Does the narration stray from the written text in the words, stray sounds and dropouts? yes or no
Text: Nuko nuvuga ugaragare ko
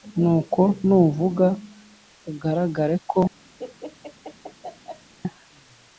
yes